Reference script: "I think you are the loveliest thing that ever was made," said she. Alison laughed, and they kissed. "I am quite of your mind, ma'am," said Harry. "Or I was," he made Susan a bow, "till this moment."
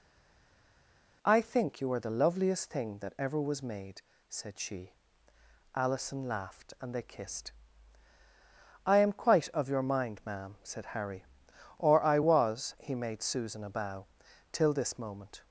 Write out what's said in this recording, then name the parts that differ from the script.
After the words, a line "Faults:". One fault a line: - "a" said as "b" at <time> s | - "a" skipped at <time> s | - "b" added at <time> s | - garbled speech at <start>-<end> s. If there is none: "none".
"I think you are the loveliest thing that ever was made," said she. Alison laughed, and they kissed. "I am quite of your mind, ma'am," said Harry. "Or I was," he made Susan a bow, "till this moment."
Faults:
none